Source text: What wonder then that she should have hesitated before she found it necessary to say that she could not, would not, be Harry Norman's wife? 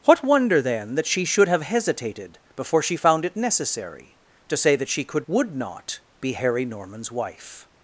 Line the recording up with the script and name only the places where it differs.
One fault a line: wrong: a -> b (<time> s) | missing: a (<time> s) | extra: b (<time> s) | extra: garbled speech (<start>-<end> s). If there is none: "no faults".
missing: not (5.3 s)